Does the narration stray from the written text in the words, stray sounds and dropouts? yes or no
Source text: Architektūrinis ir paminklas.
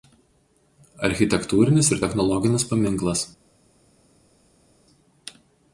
yes